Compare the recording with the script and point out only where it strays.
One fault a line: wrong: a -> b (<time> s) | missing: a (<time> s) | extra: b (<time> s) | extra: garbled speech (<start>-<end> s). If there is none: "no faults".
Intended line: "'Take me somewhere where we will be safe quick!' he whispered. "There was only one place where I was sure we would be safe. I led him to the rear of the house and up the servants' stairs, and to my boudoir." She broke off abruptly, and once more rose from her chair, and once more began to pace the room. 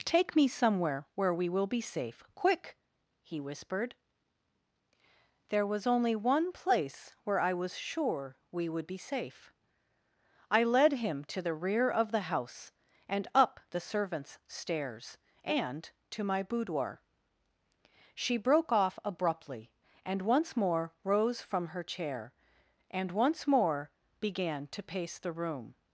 no faults